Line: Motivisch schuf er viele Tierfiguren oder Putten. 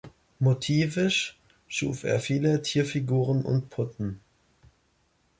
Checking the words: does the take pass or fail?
fail